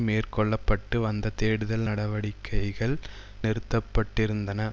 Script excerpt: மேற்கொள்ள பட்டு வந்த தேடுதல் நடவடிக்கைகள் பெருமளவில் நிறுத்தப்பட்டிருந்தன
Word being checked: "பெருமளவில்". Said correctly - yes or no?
no